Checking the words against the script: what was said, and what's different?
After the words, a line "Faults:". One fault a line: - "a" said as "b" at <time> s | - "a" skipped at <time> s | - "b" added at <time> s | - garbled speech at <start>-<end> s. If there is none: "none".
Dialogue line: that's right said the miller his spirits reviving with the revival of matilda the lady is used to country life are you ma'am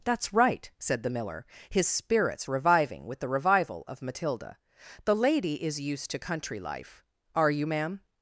that's right said the miller his spirits reviving with the revival of matilda the lady is used to country life are you ma'am
Faults:
none